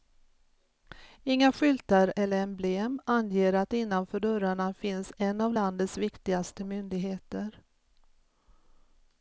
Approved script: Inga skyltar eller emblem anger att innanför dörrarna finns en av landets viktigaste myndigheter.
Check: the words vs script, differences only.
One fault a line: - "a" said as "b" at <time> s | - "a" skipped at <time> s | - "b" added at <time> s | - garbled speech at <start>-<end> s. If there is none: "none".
none